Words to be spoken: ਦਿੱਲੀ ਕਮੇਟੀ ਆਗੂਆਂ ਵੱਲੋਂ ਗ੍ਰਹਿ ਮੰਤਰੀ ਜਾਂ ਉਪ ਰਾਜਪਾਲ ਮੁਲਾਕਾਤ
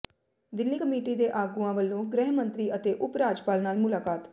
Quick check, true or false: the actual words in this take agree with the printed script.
false